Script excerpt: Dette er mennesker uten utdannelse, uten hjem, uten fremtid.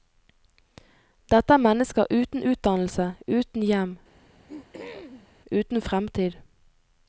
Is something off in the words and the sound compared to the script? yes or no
yes